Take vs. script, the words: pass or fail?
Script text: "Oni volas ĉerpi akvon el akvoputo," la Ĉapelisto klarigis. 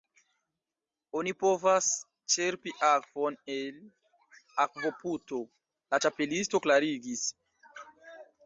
fail